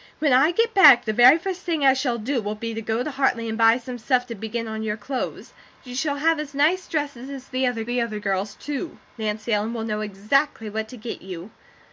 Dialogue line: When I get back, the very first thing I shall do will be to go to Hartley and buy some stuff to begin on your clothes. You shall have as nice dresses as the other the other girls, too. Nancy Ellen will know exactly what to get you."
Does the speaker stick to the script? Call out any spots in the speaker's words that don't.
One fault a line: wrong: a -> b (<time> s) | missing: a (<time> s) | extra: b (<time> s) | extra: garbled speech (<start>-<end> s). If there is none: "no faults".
no faults